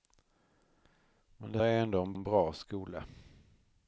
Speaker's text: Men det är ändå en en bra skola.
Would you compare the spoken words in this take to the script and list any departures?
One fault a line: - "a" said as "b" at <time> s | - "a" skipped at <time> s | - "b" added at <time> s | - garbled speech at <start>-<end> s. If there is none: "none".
none